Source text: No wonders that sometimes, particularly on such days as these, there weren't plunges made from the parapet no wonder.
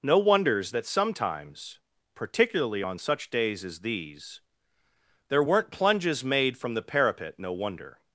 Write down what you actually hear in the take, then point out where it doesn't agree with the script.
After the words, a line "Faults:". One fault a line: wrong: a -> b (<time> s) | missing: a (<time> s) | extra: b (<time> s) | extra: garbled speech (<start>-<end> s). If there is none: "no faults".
No wonders that sometimes, particularly on such days as these, there weren't plunges made from the parapet no wonder.
Faults:
no faults